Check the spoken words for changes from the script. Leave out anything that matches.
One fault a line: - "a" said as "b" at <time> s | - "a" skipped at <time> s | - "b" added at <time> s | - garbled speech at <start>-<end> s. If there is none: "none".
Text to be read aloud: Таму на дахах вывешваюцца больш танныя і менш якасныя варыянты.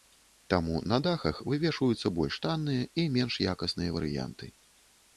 none